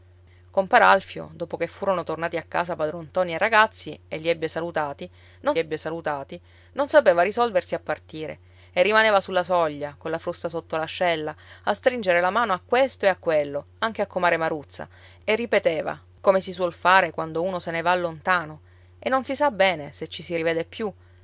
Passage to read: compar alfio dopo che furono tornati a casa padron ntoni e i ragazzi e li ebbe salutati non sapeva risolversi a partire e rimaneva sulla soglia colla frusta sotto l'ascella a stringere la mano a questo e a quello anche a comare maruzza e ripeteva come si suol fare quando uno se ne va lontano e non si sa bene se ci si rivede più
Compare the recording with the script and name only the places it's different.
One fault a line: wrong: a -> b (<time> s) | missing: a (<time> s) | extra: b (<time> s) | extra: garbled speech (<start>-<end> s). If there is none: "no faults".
extra: ebbe salutati non (5.6 s)